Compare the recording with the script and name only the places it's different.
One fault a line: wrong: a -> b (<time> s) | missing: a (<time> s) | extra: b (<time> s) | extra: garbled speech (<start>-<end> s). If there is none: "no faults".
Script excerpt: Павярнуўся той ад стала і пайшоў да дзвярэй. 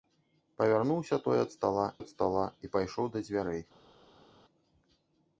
extra: ад стала (2.0 s)